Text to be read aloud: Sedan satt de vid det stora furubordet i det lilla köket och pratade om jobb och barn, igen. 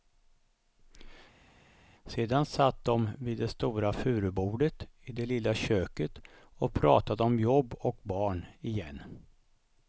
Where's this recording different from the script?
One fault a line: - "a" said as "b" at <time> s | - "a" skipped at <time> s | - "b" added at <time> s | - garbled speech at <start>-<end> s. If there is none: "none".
none